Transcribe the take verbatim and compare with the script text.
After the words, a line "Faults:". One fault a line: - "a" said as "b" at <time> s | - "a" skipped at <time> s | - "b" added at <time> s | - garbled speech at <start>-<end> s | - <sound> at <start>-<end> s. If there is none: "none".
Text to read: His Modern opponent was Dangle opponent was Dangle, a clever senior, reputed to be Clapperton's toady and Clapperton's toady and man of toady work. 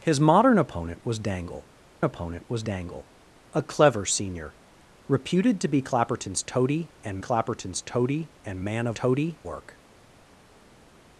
His Modern opponent was Dangle opponent was Dangle, a clever senior, reputed to be Clapperton's toady and Clapperton's toady and man of toady work.
Faults:
none